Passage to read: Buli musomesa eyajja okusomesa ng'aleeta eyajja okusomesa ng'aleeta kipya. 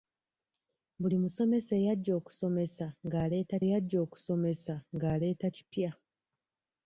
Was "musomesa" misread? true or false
false